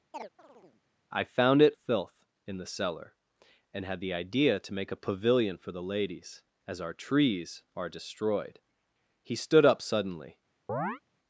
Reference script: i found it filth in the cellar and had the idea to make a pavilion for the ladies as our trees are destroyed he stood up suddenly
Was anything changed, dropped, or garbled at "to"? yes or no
no